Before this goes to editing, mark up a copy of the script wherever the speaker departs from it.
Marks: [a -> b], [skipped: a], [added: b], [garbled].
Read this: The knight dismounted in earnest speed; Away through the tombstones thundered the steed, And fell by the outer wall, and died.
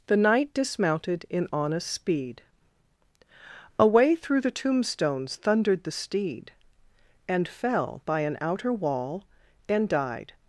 The knight dismounted in [earnest -> honest] speed; Away through the tombstones thundered the steed, And fell by [the -> an] outer wall, and died.